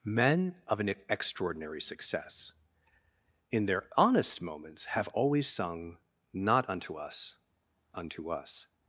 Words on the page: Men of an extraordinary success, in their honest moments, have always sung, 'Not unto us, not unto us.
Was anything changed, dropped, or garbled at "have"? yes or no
no